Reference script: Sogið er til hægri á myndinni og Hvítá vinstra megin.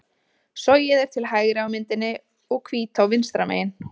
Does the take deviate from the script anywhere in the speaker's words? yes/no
no